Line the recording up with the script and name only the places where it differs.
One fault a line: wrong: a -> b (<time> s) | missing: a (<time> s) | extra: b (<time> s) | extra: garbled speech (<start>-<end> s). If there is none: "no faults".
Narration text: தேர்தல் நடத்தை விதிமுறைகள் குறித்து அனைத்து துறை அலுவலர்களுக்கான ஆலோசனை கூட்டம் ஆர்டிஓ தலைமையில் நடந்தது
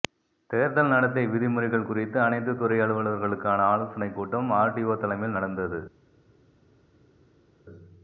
no faults